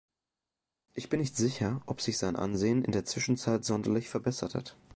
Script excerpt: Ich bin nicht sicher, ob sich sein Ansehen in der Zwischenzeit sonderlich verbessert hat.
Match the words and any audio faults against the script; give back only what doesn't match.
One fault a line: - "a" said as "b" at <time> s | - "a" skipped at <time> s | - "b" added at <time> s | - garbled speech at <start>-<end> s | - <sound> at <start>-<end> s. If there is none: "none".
none